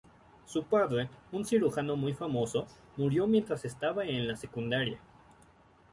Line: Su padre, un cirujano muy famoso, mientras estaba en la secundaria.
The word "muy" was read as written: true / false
true